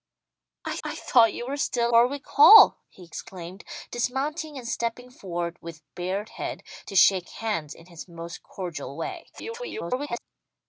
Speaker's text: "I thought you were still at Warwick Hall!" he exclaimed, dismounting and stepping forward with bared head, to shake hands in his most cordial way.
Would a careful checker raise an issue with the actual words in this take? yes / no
yes